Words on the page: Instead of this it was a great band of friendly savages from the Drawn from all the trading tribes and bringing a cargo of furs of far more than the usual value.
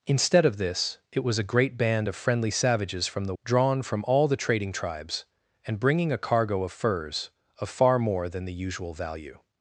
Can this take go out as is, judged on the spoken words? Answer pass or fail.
pass